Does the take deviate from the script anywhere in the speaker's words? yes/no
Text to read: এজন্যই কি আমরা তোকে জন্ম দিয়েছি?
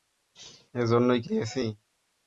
yes